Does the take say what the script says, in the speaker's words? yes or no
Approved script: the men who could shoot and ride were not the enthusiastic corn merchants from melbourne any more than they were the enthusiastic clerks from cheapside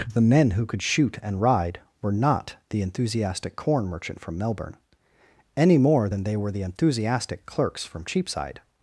no